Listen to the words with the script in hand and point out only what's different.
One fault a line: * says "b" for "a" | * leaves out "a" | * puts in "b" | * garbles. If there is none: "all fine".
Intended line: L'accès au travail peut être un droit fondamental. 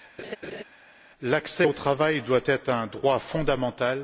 * says "doit" for "peut"